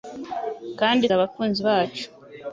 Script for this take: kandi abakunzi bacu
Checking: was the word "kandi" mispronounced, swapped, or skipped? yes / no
no